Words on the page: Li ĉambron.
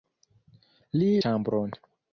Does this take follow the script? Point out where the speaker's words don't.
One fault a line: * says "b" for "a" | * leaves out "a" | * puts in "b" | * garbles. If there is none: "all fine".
all fine